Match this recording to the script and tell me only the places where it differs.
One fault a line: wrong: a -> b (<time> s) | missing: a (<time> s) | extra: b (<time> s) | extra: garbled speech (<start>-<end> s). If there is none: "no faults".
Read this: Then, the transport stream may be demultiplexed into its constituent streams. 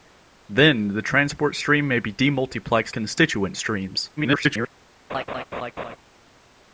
missing: into its (3.0 s)
extra: garbled speech (4.2-4.7 s)